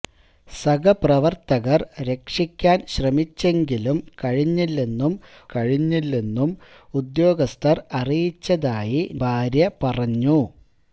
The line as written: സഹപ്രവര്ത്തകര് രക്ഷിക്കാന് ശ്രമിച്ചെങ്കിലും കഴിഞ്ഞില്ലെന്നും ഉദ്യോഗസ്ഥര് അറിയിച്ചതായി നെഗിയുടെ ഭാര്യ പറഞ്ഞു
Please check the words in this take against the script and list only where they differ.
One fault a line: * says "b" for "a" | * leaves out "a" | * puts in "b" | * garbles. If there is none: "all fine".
* puts in "കഴിഞ്ഞില്ലെന്നും"
* leaves out "നെഗിയുടെ"